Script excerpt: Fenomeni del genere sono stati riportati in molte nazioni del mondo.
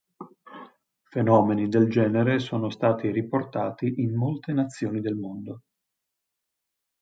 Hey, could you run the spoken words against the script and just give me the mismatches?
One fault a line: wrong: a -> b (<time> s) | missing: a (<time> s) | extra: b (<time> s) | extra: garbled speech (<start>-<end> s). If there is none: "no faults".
no faults